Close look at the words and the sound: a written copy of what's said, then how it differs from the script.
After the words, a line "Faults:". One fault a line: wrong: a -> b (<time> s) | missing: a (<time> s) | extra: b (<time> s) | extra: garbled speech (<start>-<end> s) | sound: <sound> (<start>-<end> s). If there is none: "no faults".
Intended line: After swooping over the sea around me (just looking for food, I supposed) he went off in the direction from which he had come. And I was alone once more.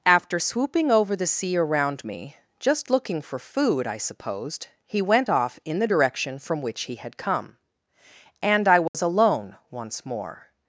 After swooping over the sea around me (just looking for food, I supposed) he went off in the direction from which he had come. And I was alone once more.
Faults:
sound: dropout (8.9-8.9 s)